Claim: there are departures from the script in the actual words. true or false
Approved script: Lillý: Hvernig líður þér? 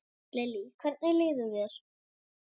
false